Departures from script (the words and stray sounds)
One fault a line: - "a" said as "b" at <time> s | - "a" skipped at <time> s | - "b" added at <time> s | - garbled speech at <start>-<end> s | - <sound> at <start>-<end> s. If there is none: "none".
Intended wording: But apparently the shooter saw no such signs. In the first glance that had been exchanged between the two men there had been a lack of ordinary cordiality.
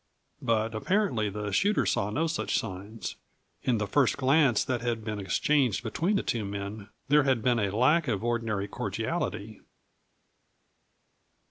none